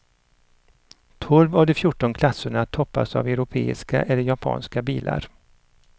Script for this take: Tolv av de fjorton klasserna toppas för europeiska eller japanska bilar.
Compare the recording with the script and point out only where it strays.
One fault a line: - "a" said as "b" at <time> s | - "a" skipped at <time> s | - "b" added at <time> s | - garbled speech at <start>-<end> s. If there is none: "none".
- "för" said as "av" at 3.1 s